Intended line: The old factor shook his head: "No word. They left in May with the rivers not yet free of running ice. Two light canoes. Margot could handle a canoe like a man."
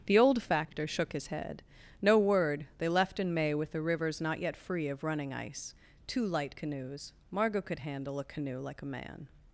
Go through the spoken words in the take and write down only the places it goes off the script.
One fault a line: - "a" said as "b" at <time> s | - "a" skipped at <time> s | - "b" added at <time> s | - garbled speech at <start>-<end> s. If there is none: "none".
none